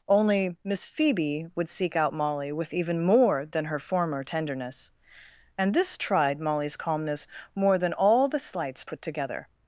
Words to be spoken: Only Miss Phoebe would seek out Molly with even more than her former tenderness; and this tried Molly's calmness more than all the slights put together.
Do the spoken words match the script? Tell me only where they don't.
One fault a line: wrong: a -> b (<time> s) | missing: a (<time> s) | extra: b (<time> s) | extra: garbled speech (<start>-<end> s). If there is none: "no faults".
no faults